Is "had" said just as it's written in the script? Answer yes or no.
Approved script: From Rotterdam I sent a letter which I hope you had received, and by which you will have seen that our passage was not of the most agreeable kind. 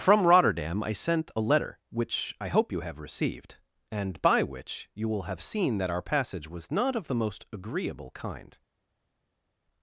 no